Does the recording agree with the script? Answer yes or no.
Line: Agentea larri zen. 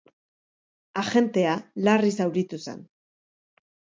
no